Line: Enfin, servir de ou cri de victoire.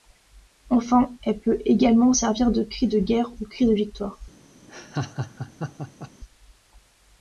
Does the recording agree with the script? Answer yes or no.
no